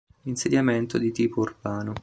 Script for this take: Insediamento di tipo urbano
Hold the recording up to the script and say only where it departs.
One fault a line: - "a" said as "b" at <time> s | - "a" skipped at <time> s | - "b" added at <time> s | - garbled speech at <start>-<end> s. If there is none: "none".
none